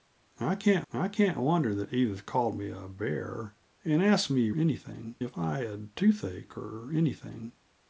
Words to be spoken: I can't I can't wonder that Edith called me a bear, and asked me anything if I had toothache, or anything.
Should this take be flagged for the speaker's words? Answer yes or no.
no